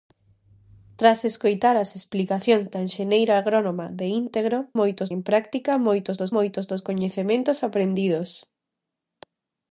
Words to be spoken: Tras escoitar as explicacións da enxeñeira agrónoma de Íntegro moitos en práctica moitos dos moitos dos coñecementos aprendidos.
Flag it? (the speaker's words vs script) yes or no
no